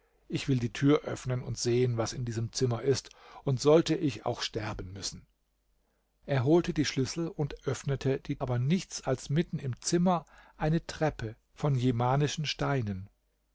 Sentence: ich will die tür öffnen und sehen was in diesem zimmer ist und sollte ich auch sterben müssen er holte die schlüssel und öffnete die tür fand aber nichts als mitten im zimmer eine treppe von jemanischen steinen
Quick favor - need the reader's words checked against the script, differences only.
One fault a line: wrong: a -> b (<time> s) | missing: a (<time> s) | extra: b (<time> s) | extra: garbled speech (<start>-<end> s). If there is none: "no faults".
missing: tür fand (8.4 s)